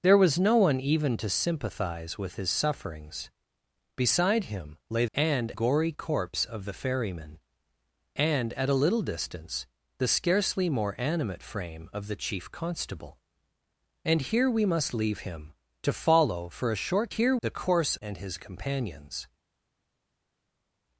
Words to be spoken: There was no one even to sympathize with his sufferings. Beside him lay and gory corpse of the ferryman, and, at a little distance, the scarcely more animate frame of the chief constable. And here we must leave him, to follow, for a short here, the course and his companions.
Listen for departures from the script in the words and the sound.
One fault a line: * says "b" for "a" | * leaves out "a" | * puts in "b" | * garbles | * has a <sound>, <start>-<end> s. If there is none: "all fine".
all fine